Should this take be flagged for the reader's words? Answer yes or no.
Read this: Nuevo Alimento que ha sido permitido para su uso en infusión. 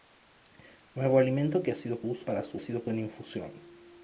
yes